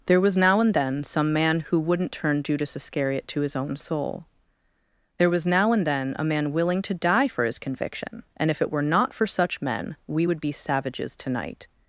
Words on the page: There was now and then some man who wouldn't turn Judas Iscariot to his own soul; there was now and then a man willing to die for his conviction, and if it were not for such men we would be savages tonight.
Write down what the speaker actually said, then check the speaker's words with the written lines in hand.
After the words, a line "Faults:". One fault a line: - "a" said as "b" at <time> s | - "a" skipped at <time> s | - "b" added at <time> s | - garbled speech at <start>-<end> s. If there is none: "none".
There was now and then some man who wouldn't turn Judas Iscariot to his own soul; there was now and then a man willing to die for his conviction, and if it were not for such men we would be savages tonight.
Faults:
none